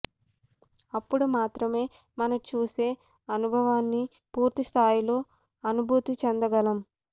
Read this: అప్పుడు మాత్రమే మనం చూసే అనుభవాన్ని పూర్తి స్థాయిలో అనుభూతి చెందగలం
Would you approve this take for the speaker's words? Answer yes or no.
yes